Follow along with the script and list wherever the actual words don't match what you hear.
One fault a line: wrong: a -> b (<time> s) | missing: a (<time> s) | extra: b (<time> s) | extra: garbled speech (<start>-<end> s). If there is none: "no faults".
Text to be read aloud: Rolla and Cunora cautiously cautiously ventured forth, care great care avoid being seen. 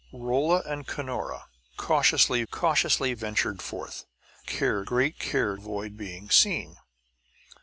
no faults